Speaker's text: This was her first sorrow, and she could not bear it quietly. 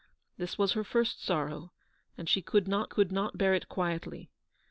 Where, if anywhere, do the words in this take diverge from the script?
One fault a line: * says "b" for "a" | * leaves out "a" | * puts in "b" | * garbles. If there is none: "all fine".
* puts in "could not"